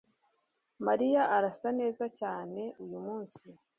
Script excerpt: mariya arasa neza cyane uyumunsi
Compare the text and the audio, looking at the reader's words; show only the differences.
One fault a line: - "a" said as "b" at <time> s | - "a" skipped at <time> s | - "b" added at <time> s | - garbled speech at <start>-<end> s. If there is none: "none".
none